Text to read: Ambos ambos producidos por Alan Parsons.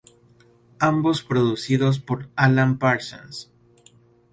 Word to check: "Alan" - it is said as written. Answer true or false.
true